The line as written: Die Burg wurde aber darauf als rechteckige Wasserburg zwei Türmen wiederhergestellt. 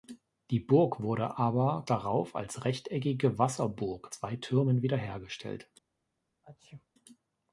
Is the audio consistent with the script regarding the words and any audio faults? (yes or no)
no